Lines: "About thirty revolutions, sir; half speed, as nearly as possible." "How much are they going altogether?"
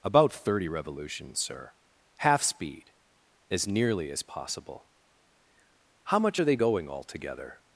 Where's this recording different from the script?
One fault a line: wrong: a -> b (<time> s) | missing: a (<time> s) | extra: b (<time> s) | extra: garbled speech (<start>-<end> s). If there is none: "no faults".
no faults